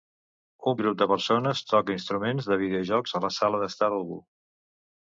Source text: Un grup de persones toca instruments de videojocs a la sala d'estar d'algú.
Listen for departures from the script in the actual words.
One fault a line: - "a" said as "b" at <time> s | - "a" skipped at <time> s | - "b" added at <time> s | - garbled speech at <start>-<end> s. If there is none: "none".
none